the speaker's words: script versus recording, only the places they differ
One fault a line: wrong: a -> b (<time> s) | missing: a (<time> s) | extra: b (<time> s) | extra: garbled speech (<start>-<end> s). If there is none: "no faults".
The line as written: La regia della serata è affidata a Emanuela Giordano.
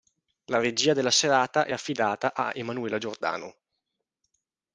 no faults